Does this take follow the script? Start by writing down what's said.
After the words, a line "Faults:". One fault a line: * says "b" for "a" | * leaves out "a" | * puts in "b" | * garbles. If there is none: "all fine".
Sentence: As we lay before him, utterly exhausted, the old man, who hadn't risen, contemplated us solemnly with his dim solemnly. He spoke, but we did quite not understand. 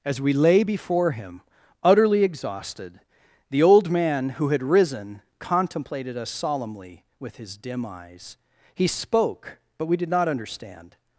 As we lay before him, utterly exhausted, the old man, who had risen, contemplated us solemnly with his dim eyes. He spoke, but we did not understand.
Faults:
* says "had" for "hadn't"
* says "eyes" for "solemnly"
* leaves out "quite"